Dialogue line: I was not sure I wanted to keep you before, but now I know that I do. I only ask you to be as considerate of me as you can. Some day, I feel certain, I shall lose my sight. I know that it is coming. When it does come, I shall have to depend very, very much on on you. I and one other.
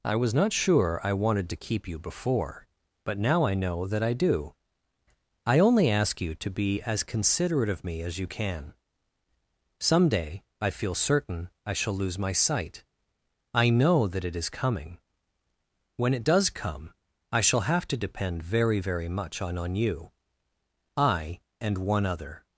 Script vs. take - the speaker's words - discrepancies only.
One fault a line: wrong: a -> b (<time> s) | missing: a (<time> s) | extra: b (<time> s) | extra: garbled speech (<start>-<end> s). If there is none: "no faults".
no faults